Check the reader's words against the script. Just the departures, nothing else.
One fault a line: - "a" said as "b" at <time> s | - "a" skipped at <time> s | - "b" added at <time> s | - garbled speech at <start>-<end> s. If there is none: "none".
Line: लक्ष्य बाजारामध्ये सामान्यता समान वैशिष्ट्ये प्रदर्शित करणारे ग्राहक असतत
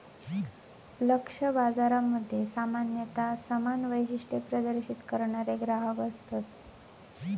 none